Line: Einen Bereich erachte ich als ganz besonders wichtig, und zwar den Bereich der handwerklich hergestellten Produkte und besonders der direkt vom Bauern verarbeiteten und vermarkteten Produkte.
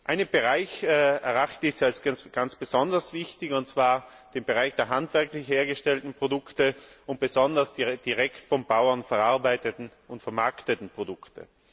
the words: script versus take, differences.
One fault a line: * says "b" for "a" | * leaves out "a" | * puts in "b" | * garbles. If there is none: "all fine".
all fine